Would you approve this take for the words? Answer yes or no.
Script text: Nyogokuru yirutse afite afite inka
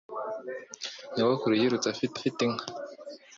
yes